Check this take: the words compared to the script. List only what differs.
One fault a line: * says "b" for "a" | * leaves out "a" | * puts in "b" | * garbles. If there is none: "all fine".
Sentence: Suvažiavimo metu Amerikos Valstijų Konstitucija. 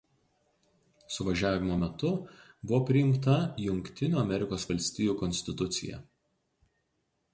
* puts in "buvo priimta Jungtinių"